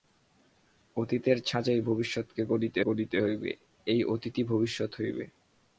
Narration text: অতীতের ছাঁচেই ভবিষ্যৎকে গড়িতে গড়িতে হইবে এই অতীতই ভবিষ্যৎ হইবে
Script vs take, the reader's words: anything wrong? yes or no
no